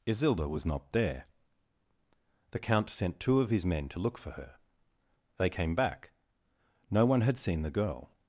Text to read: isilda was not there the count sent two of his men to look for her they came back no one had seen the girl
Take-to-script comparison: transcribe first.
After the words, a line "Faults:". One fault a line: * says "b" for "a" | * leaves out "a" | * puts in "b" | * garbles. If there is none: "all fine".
isilda was not there the count sent two of his men to look for her they came back no one had seen the girl
Faults:
all fine